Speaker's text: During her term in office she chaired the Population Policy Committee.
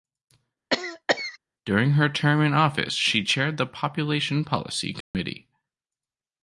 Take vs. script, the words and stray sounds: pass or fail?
fail